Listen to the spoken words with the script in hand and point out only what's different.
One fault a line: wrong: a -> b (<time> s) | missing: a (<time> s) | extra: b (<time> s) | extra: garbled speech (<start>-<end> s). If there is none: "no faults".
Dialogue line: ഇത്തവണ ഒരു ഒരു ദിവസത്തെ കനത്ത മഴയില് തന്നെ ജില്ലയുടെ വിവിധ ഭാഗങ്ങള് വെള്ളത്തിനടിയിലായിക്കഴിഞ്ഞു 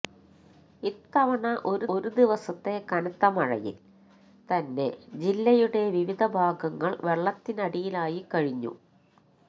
no faults